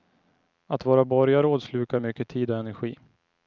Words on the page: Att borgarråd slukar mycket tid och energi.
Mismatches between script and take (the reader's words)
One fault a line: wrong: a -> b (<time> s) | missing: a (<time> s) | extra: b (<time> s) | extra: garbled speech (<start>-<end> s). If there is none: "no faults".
extra: vara (0.8 s)